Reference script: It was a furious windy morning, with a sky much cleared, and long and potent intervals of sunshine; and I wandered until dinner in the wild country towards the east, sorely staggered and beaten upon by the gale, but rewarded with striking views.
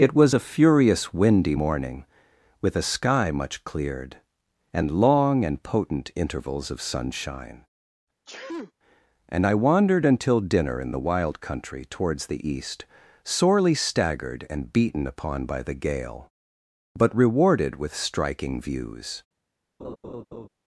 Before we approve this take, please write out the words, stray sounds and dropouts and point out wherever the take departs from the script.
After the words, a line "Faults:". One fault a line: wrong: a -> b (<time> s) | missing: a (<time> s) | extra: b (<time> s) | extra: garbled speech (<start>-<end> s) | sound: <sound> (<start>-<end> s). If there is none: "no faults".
It was a furious windy morning, with a sky much cleared, and long and potent intervals of sunshine; and I wandered until dinner in the wild country towards the east, sorely staggered and beaten upon by the gale, but rewarded with striking views.
Faults:
sound: sneeze (8.3-8.7 s)
sound: laugh (19.8-20.5 s)